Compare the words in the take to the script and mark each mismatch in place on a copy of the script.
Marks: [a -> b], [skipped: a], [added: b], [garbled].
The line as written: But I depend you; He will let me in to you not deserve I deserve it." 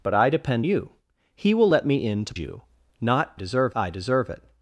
But I depend you; He will let me in to you not deserve I deserve it."